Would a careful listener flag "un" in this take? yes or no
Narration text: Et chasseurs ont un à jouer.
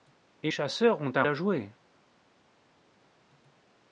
no